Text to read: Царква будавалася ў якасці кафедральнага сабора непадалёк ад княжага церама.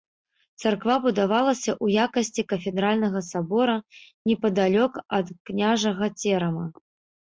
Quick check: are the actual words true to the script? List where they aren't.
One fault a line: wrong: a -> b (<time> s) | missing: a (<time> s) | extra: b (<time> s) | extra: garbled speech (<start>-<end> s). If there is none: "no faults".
no faults